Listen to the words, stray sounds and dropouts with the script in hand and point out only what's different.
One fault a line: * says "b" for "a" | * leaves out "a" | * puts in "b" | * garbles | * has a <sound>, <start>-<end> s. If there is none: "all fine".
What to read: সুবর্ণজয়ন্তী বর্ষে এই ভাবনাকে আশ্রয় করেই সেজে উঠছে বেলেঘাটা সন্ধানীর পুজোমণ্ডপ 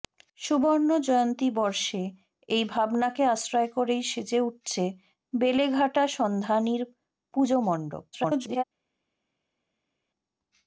* garbles